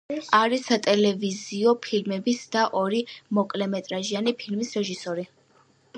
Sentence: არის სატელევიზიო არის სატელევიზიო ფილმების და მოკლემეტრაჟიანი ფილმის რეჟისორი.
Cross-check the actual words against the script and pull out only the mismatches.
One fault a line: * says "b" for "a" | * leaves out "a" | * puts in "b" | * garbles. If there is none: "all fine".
* leaves out "არის სატელევიზიო"
* puts in "ორი"